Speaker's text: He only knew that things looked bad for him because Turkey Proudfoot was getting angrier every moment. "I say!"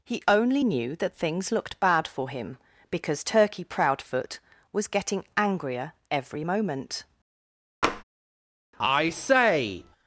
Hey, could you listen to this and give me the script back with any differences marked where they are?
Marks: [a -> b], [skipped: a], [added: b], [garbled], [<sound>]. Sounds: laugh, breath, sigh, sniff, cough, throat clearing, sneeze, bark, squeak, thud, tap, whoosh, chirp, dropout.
He only knew that things looked bad for him because Turkey Proudfoot was getting angrier every moment. [tap] "I say!"